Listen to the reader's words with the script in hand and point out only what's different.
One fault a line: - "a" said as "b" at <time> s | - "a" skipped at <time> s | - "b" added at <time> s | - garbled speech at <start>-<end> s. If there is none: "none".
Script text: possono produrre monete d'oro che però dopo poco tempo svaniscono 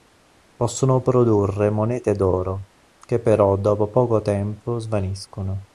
none